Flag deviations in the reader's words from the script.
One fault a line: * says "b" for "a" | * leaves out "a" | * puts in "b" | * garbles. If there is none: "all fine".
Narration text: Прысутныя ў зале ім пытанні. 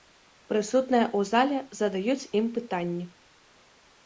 * puts in "задаюць"